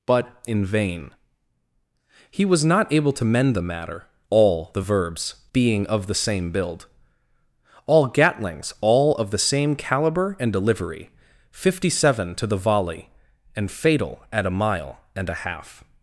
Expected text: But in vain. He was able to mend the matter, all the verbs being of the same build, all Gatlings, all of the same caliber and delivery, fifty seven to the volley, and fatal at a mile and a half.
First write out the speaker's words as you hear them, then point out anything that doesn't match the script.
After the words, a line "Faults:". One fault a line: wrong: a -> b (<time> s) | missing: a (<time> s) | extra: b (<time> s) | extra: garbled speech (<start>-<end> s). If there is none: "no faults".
But in vain. He was not able to mend the matter, all the verbs being of the same build, all Gatlings, all of the same caliber and delivery, fifty seven to the volley, and fatal at a mile and a half.
Faults:
extra: not (2.6 s)